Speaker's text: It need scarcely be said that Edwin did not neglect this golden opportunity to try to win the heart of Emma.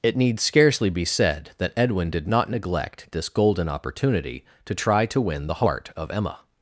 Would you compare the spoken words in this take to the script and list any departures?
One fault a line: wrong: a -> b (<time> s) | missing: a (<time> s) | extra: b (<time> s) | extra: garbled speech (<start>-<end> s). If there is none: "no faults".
no faults